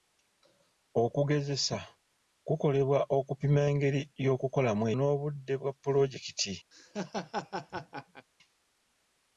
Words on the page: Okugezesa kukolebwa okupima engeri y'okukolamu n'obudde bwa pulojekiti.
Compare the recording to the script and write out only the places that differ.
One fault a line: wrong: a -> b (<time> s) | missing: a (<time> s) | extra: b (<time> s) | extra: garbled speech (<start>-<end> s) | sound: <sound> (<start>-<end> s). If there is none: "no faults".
sound: laugh (6.7-8.3 s)